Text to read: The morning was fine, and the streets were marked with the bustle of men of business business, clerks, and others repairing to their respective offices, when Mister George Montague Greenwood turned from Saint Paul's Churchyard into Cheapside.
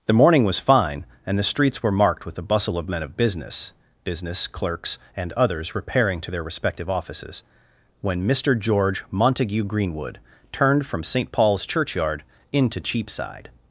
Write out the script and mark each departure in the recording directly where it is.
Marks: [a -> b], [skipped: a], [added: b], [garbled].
The morning was fine, and the streets were marked with the bustle of men of business business, clerks, and others repairing to their respective offices, when Mister George Montague Greenwood turned from Saint Paul's Churchyard into Cheapside.